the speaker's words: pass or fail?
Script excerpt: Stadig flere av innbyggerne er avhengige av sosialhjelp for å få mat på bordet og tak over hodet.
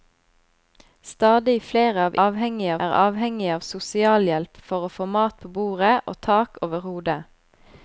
fail